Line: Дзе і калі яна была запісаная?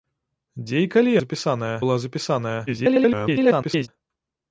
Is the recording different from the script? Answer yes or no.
yes